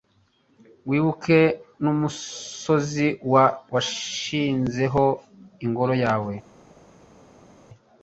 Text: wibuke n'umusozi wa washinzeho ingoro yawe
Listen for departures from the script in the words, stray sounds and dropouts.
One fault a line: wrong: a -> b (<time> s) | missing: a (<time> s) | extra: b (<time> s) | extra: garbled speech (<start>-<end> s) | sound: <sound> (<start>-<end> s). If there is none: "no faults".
no faults